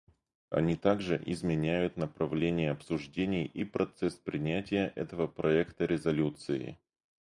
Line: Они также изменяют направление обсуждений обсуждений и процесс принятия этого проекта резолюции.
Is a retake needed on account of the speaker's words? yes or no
yes